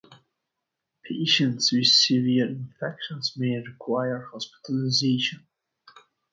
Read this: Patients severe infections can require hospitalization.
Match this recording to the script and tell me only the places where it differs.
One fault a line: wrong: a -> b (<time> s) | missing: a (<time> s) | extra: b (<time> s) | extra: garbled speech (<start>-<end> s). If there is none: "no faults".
extra: with (1.7 s)
wrong: can -> may (3.4 s)